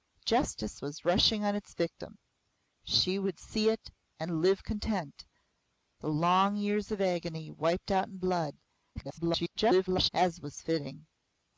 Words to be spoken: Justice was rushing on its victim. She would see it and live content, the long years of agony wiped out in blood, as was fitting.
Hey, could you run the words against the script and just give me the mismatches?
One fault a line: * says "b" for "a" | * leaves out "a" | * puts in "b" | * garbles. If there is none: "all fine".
* garbles